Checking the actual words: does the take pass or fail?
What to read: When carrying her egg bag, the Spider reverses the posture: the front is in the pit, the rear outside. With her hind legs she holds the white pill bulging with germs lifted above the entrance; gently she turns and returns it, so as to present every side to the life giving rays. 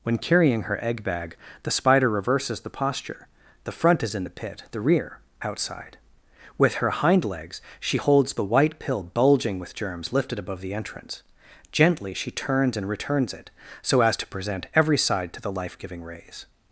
pass